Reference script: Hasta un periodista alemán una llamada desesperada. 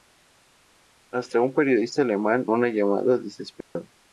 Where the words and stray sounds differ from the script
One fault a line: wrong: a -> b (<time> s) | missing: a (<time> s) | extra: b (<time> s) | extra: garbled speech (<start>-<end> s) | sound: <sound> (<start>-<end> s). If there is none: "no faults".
sound: dropout (3.6-3.8 s)